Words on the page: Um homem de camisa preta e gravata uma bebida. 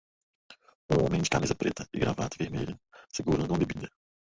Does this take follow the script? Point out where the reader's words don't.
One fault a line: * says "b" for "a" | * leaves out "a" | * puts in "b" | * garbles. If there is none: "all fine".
* puts in "vermelha segurando"